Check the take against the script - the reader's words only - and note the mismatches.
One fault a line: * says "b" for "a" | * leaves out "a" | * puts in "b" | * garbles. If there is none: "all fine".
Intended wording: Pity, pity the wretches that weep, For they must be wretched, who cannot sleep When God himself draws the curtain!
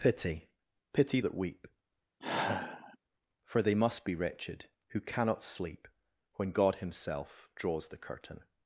* leaves out "the wretches"